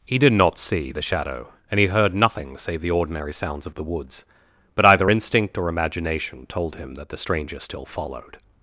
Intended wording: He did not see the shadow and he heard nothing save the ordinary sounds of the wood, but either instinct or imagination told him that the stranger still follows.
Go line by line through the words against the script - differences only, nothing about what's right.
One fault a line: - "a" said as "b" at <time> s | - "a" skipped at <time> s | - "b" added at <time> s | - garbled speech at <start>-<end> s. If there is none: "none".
- "wood" said as "woods" at 3.8 s
- "follows" said as "followed" at 7.8 s